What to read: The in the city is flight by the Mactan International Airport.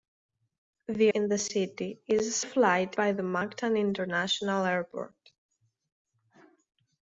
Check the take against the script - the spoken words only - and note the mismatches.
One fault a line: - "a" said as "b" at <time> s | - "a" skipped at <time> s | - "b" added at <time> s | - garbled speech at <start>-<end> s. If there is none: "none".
none